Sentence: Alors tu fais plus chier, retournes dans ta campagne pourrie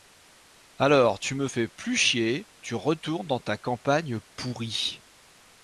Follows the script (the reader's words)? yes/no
no